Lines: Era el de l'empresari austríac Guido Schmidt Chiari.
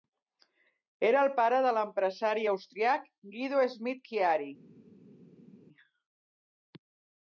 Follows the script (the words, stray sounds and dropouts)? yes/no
no